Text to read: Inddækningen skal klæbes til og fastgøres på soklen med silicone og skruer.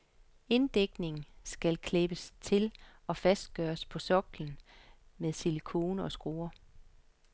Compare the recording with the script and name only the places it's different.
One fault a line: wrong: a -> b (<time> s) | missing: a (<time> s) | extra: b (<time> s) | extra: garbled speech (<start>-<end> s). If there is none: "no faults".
no faults